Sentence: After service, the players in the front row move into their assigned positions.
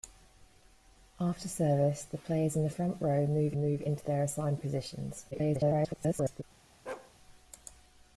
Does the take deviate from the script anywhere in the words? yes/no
yes